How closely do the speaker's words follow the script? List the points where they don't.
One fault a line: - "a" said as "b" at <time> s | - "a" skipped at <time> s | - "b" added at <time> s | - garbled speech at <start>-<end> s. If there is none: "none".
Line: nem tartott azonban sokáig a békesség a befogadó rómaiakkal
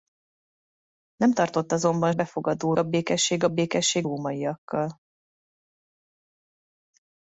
- "sokáig" said as "befogadó" at 2.1 s
- "befogadó" said as "békesség" at 3.5 s